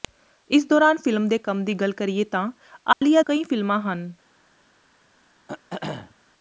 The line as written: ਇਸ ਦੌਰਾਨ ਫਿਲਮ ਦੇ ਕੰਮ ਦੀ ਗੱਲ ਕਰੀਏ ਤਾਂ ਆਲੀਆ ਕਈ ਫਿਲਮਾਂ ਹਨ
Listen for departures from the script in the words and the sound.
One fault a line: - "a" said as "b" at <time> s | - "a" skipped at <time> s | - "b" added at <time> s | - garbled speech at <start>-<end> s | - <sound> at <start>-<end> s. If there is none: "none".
- dropout at 2.9-3.0 s
- throat clearing at 5.5-6.2 s